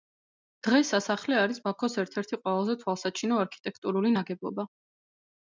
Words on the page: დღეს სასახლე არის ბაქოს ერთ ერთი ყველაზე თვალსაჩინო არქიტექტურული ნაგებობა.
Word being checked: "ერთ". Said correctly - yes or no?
yes